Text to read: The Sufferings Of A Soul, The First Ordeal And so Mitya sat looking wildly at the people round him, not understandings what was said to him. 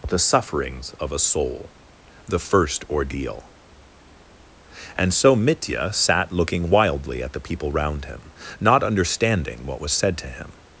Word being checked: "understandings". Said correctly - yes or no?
no